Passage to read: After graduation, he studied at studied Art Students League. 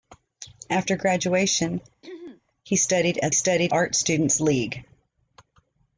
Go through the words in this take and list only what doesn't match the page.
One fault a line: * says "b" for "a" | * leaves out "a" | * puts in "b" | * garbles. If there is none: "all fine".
all fine